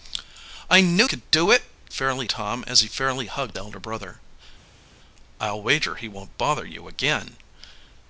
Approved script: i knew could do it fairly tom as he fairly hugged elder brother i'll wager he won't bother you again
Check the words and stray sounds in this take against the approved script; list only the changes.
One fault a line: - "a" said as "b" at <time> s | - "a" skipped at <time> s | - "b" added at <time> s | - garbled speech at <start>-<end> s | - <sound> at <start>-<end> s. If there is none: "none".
none